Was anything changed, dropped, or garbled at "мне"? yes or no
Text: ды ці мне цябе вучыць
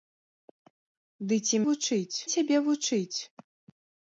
yes